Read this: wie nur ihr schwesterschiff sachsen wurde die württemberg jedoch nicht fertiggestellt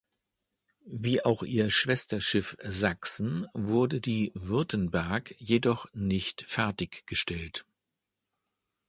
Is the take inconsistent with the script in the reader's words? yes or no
yes